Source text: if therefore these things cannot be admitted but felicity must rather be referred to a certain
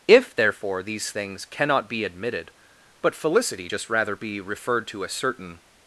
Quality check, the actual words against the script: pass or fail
fail